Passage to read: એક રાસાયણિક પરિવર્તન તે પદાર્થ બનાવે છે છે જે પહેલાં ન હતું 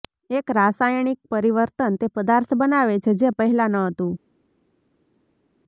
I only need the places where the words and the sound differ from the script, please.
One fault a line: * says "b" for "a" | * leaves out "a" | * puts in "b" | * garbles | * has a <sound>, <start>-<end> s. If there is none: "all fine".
* leaves out "છે"